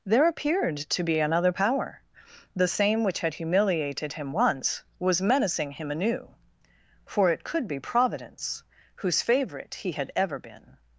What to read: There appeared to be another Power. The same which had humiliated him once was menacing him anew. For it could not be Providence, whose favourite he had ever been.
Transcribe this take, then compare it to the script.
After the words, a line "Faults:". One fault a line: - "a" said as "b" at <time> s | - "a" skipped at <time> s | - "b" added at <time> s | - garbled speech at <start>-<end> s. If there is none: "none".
There appeared to be another Power. The same which had humiliated him once was menacing him anew. For it could be Providence, whose favourite he had ever been.
Faults:
- "not" skipped at 7.7 s